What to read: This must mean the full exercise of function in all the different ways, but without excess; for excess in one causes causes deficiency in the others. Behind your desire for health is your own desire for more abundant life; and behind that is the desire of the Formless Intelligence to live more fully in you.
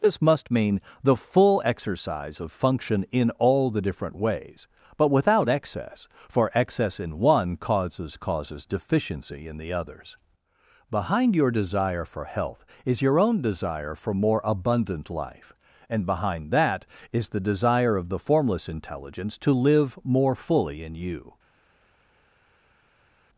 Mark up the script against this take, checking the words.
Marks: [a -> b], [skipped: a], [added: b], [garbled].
This must mean the full exercise of function in all the different ways, but without excess; for excess in one causes causes deficiency in the others. Behind your desire for health is your own desire for more abundant life; and behind that is the desire of the Formless Intelligence to live more fully in you.